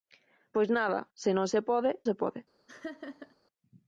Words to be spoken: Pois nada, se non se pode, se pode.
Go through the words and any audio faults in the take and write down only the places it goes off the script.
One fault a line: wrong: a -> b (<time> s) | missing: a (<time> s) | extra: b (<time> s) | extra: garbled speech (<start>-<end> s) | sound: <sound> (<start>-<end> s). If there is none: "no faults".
sound: laugh (2.7-3.4 s)